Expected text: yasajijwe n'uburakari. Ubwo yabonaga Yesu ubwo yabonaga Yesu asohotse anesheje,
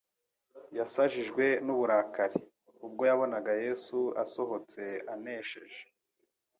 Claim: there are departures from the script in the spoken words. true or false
true